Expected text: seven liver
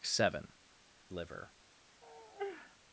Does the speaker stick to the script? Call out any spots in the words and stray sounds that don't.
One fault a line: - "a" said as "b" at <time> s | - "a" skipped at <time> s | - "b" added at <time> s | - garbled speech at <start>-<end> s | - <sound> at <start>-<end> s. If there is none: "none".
- sigh at 2.0-2.8 s